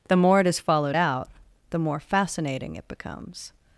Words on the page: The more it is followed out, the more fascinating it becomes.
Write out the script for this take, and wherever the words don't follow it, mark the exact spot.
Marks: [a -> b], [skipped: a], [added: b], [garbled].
The more it is followed out, the more fascinating it becomes.